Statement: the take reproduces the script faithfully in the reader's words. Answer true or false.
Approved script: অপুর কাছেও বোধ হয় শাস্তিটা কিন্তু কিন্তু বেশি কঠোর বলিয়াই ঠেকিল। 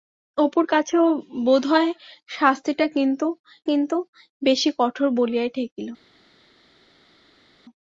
true